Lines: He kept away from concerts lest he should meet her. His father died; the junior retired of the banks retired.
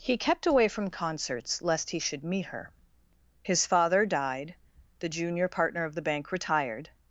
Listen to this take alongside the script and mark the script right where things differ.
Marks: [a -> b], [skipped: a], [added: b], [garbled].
He kept away from concerts lest he should meet her. His father died; the junior [retired -> partner] of the [banks -> bank] retired.